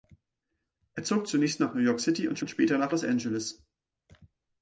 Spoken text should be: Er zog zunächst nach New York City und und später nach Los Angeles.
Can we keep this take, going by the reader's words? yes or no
yes